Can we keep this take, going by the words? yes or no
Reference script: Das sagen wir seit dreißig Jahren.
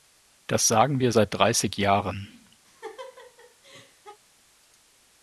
yes